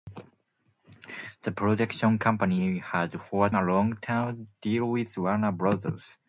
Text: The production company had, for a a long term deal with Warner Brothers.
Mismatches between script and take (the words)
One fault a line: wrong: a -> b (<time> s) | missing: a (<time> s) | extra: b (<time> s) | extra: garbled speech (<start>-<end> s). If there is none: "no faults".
no faults